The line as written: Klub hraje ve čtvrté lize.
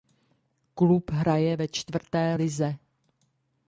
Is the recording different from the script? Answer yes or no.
no